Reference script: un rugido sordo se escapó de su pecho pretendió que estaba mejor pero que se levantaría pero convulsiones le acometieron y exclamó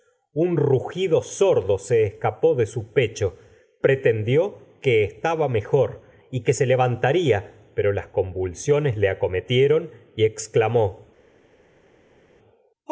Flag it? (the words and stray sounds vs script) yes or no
yes